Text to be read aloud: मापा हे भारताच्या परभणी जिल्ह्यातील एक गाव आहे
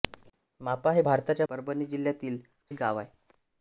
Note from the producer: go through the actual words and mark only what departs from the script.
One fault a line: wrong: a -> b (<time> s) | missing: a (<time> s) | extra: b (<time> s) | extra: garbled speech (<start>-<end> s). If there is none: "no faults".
no faults